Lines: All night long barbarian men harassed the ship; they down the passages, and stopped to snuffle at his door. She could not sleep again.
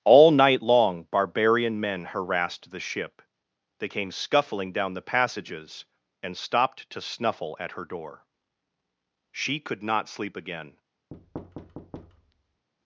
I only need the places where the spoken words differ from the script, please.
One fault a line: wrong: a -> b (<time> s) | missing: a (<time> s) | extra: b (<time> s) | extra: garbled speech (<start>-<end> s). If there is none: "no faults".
extra: came scuffling (3.9 s)
wrong: his -> her (7.7 s)